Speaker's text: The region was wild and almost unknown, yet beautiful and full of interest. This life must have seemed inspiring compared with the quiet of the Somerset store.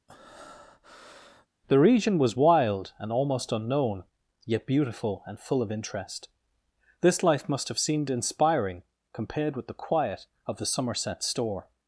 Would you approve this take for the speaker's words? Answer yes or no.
yes